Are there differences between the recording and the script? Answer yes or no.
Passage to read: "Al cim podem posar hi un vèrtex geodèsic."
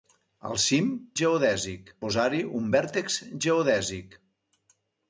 yes